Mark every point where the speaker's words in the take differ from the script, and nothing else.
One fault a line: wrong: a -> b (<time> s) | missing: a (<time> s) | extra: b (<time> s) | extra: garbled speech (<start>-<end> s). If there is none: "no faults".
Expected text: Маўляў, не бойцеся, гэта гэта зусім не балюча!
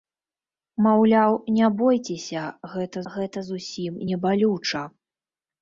no faults